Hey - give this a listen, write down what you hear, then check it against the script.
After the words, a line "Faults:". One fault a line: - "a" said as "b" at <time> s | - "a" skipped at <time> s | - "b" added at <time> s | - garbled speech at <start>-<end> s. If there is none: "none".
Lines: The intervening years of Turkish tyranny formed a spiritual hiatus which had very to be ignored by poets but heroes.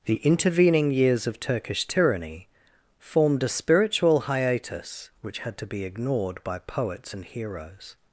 The intervening years of Turkish tyranny formed a spiritual hiatus which had to be ignored by poets and heroes.
Faults:
- "very" skipped at 5.6 s
- "but" said as "and" at 7.1 s